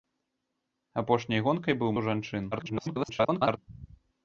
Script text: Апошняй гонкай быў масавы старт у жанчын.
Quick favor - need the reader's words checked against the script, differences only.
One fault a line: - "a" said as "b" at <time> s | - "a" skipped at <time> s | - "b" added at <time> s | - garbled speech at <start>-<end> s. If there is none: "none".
- "масавы старт" skipped at 1.9 s
- garbled speech at 2.5-3.6 s